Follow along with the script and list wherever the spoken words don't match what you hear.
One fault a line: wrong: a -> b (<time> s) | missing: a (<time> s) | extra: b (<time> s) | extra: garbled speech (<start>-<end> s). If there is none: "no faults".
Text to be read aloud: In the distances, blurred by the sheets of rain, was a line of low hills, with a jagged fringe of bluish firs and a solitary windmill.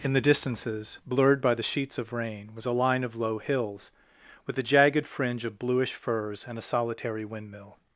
no faults